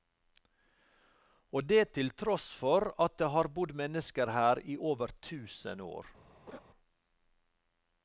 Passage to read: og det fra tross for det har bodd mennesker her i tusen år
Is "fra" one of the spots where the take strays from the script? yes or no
yes